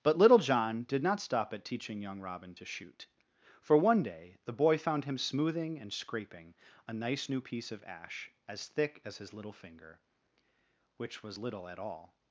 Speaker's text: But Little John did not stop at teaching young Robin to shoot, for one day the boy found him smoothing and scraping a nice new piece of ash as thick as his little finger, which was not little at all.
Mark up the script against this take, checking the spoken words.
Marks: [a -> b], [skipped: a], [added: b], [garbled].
But Little John did not stop at teaching young Robin to shoot, for one day the boy found him smoothing and scraping a nice new piece of ash as thick as his little finger, which was [skipped: not] little at all.